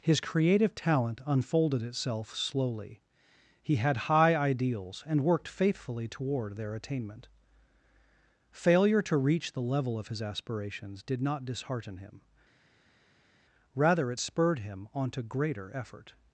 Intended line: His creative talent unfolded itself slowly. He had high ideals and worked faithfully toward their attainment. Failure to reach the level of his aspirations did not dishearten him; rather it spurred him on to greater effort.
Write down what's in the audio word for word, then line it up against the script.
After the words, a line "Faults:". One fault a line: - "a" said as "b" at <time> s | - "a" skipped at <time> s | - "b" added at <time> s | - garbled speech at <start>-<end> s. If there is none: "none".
His creative talent unfolded itself slowly. He had high ideals and worked faithfully toward their attainment. Failure to reach the level of his aspirations did not dishearten him; rather it spurred him on to greater effort.
Faults:
none